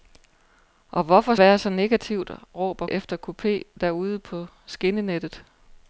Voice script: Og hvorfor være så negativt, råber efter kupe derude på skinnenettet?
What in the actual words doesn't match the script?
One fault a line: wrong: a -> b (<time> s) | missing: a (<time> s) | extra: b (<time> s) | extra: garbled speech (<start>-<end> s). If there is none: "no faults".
no faults